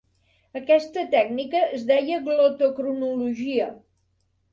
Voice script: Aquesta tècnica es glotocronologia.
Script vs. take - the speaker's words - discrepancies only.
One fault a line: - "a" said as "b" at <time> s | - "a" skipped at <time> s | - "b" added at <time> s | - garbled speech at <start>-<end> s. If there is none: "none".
- "deia" added at 1.9 s